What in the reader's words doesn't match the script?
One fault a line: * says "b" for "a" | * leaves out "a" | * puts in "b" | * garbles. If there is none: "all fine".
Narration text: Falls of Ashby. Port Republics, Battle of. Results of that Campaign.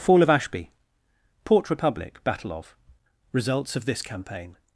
* says "Fall" for "Falls"
* says "Republic" for "Republics"
* says "this" for "that"